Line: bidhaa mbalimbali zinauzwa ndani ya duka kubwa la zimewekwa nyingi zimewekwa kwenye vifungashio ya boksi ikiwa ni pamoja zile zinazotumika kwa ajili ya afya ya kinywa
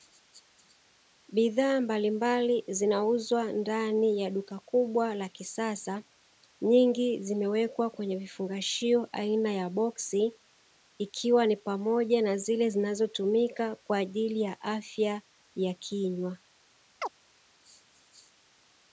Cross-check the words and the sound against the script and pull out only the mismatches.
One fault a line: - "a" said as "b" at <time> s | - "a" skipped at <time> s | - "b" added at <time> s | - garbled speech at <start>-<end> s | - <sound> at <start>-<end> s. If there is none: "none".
- "zimewekwa" said as "kisasa" at 5.3 s
- "aina" added at 9.1 s
- "na" added at 12.2 s
- chirp at 17.0-17.1 s